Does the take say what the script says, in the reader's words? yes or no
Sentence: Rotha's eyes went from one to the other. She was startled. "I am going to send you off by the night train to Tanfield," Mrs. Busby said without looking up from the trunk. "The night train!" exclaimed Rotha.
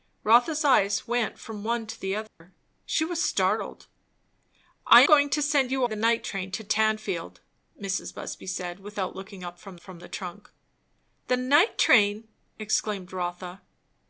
no